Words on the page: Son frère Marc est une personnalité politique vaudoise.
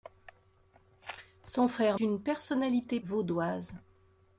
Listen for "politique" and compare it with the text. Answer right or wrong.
wrong